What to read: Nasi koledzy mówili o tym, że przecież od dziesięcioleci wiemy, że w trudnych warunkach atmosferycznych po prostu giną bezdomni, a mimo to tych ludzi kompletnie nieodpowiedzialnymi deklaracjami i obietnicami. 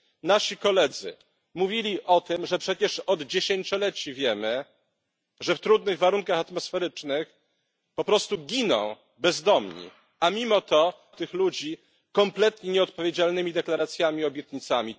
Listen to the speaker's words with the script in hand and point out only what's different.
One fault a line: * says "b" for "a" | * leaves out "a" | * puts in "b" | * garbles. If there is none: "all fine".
all fine